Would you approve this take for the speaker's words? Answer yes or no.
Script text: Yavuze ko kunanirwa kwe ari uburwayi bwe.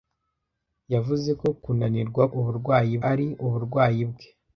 no